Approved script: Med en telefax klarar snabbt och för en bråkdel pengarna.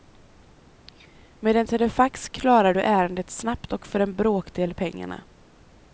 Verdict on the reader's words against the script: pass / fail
fail